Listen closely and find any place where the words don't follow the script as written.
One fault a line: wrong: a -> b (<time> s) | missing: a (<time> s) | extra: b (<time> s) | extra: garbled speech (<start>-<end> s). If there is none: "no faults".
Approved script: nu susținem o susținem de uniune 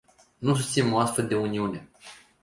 wrong: susținem -> astfel (1.0 s)